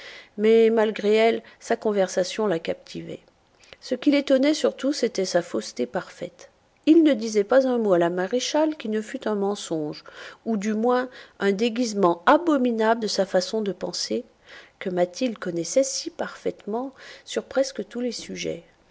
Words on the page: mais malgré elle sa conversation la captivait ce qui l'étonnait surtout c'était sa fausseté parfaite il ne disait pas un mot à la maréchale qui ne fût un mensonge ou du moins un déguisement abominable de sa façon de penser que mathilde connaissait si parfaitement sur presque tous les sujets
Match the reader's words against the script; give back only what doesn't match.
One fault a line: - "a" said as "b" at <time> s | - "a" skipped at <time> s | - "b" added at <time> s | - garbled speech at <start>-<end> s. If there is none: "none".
none